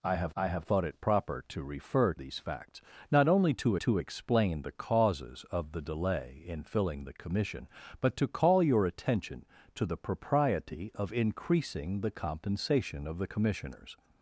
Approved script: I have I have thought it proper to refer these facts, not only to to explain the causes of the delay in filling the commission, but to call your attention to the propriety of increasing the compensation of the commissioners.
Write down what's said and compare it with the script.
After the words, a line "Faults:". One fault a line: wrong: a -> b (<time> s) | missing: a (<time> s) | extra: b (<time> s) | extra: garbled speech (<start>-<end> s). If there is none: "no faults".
I have I have thought it proper to refer these facts, not only to to explain the causes of the delay in filling the commission, but to call your attention to the propriety of increasing the compensation of the commissioners.
Faults:
no faults